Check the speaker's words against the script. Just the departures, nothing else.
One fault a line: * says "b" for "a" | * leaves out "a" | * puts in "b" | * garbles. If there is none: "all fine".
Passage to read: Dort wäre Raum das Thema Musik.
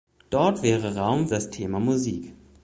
all fine